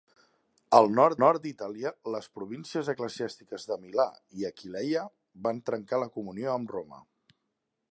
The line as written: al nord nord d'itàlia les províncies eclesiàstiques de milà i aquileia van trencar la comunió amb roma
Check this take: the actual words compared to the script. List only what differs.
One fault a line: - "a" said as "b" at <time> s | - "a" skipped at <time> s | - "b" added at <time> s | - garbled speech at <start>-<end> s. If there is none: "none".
none